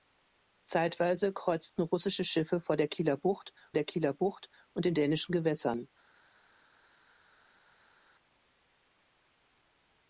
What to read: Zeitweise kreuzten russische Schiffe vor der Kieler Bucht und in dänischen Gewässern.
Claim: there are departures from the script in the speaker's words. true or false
true